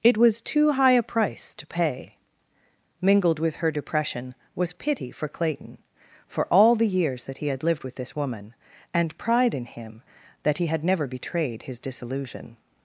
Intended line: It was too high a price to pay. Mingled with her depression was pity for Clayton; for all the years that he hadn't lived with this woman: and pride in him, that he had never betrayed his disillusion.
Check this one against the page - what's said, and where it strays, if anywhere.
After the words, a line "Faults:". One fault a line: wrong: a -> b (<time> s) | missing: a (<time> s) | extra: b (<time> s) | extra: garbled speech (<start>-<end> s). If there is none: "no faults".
It was too high a price to pay. Mingled with her depression was pity for Clayton; for all the years that he had lived with this woman: and pride in him, that he had never betrayed his disillusion.
Faults:
wrong: hadn't -> had (7.5 s)